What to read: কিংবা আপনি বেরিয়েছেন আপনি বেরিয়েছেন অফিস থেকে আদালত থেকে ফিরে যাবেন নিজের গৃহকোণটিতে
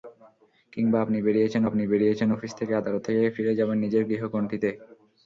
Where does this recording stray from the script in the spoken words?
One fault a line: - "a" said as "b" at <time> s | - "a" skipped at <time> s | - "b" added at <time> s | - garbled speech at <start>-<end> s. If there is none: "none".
none